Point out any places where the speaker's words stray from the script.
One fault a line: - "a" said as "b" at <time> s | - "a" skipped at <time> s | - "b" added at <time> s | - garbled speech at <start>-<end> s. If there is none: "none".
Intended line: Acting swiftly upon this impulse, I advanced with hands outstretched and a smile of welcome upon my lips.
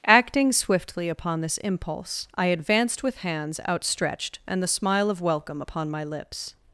- "a" said as "the" at 4.6 s